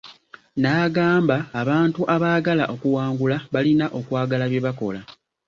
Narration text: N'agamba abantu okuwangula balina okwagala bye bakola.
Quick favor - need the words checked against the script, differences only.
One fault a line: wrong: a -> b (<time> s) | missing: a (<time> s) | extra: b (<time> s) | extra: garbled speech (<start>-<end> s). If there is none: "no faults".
extra: abaagala (2.1 s)